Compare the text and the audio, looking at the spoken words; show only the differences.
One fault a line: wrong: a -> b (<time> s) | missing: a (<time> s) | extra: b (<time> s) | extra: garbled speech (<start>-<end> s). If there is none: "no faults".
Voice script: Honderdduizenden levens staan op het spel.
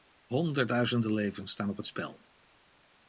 no faults